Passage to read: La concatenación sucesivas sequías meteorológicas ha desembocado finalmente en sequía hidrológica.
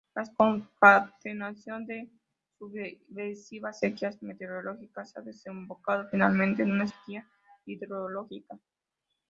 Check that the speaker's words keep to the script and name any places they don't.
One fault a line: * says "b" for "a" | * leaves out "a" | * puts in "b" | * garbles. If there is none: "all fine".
* puts in "de"
* puts in "una"